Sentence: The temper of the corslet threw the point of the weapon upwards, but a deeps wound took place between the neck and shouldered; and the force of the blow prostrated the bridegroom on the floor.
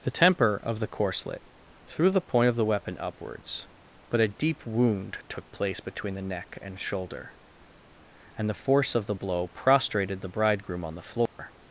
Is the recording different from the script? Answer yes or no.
yes